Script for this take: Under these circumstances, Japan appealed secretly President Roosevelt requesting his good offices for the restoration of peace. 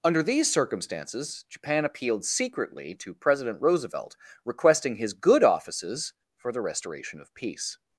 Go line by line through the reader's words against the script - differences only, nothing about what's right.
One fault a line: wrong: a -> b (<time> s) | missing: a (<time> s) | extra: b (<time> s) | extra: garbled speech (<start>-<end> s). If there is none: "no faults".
extra: to (3.0 s)